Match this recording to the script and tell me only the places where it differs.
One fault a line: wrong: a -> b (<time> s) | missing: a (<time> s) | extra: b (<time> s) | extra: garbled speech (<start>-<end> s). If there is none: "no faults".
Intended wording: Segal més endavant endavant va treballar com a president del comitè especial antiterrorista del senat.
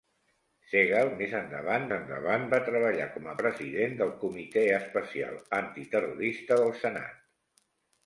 no faults